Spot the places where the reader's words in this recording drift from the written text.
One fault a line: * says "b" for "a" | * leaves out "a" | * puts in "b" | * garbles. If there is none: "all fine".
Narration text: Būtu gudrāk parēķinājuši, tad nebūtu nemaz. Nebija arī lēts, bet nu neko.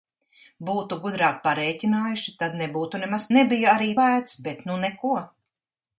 all fine